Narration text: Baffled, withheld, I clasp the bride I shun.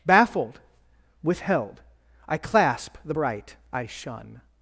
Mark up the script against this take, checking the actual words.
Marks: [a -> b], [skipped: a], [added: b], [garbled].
Baffled, withheld, I clasp the [bride -> bright] I shun.